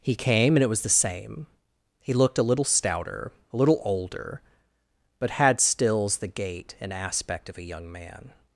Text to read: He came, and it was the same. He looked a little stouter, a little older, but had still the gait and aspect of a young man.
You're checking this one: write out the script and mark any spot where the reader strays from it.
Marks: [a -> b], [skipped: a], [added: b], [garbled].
He came, and it was the same. He looked a little stouter, a little older, but had [still -> stills] the gait and aspect of a young man.